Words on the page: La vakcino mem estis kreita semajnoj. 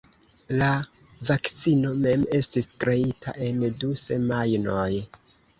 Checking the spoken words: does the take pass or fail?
fail